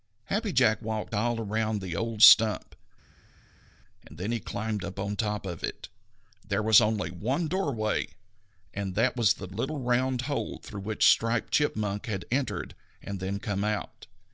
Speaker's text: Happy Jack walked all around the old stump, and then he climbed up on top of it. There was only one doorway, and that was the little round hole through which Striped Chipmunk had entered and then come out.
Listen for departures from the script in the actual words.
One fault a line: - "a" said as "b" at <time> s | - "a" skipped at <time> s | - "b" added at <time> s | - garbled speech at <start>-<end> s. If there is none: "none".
none